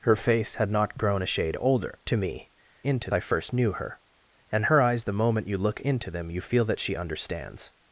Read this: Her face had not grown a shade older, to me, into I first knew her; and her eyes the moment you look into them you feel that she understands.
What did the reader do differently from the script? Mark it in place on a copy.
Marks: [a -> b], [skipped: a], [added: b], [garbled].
Her face had not grown a shade older, to me, into I first knew her; and her eyes the moment you look into them you feel that she understands.